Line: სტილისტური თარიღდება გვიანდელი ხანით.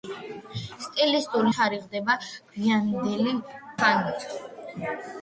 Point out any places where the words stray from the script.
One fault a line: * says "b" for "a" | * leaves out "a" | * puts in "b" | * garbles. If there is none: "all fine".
all fine